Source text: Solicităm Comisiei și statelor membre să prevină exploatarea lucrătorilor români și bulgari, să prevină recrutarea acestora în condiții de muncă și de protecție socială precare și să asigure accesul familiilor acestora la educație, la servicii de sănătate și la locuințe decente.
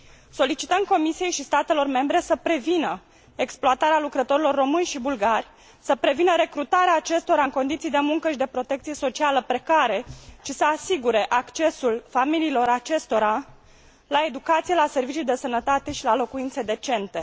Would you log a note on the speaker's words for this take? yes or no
no